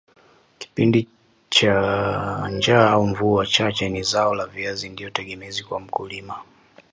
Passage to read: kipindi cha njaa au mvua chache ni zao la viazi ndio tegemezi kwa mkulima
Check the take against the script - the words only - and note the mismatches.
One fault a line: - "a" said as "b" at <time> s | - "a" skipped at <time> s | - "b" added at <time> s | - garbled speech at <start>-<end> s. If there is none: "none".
none